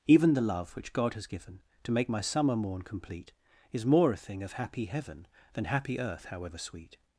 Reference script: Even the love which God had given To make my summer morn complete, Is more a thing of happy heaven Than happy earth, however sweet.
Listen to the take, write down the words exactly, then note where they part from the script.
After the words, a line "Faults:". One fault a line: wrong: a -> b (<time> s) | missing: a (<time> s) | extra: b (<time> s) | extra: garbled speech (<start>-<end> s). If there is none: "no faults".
Even the love which God has given To make my summer morn complete, Is more a thing of happy heaven Than happy earth, however sweet.
Faults:
wrong: had -> has (1.1 s)